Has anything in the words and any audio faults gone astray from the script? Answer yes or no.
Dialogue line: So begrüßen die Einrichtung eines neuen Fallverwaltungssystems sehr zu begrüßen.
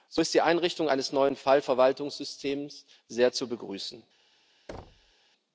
yes